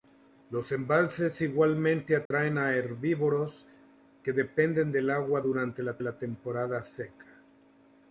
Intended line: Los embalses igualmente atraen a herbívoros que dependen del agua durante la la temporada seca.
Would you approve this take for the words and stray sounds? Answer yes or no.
no